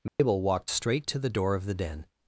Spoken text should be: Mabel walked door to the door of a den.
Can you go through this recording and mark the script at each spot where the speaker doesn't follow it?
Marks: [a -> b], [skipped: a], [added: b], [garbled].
Mabel walked [door -> straight] to the door of [a -> the] den.